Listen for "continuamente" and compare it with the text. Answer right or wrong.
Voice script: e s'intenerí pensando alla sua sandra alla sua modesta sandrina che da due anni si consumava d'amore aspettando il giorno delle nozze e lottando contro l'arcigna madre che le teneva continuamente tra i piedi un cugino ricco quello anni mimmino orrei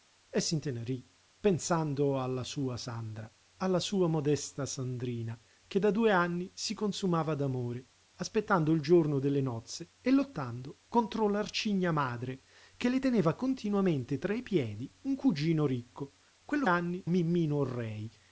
right